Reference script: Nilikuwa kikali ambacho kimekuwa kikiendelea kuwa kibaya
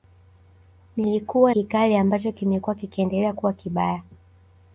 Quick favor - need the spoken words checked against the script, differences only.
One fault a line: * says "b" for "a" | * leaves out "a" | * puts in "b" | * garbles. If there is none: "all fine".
all fine